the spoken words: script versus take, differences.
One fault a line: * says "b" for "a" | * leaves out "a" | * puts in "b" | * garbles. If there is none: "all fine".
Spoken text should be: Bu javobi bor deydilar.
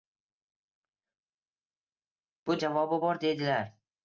all fine